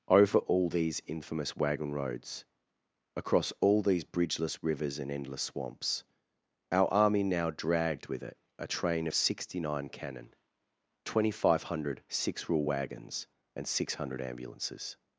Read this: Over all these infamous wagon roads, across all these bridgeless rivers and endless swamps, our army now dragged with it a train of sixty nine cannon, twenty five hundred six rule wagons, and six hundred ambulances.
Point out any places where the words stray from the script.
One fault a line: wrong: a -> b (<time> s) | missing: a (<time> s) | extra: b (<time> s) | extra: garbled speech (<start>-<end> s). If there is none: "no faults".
no faults